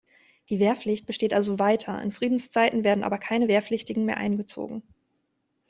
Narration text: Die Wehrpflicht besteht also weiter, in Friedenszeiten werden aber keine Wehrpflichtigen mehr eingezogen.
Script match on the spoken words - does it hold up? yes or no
yes